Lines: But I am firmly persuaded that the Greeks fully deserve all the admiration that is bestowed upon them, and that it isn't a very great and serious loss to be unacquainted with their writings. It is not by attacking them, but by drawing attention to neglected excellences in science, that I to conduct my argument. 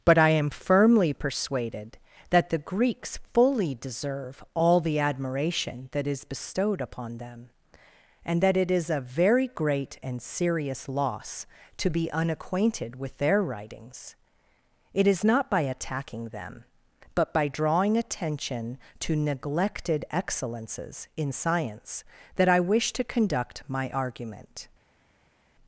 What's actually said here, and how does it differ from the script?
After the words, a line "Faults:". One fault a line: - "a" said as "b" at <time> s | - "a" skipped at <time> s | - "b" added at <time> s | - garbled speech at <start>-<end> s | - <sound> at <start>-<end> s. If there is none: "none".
But I am firmly persuaded that the Greeks fully deserve all the admiration that is bestowed upon them, and that it is a very great and serious loss to be unacquainted with their writings. It is not by attacking them, but by drawing attention to neglected excellences in science, that I wish to conduct my argument.
Faults:
- "isn't" said as "is" at 8.7 s
- "wish" added at 22.6 s